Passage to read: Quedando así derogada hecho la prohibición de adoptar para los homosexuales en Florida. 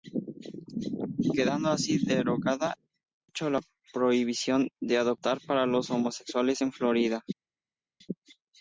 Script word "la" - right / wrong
right